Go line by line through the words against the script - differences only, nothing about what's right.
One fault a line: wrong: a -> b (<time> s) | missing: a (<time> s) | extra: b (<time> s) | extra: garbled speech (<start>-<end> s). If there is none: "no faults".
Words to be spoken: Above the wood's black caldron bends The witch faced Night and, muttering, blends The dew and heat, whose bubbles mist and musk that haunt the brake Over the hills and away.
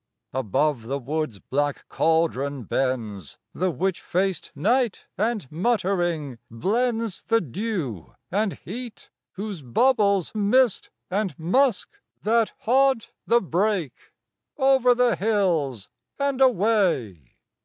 no faults